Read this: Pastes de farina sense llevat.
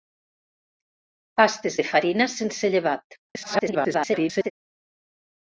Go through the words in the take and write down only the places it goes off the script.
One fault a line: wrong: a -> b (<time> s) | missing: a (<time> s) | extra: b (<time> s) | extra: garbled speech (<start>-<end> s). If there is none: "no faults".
extra: garbled speech (3.3-4.5 s)